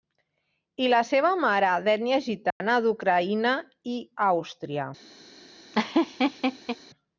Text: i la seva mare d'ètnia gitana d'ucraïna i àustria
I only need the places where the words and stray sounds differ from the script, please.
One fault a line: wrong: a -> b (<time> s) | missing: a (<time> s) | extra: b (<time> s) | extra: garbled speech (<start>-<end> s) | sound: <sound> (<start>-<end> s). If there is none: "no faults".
sound: dropout (2.5-2.6 s)
sound: laugh (5.7-6.8 s)